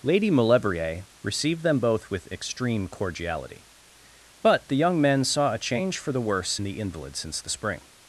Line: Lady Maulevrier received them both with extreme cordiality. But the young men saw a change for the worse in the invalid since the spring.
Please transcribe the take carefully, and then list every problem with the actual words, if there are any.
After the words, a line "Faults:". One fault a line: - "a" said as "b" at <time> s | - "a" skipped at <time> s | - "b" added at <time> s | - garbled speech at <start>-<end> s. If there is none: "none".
Lady Maulevrier received them both with extreme cordiality. But the young men saw a change for the worse the invalid since the spring.
Faults:
- "in" skipped at 6.6 s